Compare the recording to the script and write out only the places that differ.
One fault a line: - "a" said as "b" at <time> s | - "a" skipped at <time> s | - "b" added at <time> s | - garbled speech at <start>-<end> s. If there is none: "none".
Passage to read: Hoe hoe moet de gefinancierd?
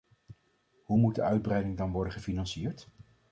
- "hoe" skipped at 1.0 s
- "uitbreiding dan worden" added at 1.2 s